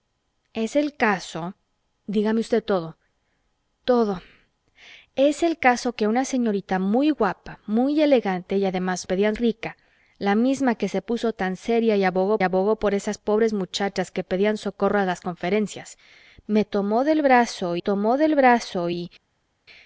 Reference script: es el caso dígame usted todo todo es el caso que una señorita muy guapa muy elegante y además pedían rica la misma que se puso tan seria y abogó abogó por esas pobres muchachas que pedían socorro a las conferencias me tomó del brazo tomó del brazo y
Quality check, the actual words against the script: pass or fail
pass